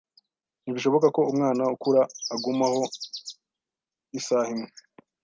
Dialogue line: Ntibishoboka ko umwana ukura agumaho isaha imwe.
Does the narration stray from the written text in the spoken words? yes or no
no